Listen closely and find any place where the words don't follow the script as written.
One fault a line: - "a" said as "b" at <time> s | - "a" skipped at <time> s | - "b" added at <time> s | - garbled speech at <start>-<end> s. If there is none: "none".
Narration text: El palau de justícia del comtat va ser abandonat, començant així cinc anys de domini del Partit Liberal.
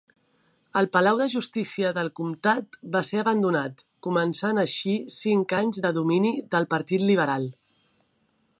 none